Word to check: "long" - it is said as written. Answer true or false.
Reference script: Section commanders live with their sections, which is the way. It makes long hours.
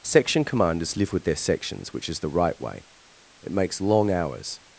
true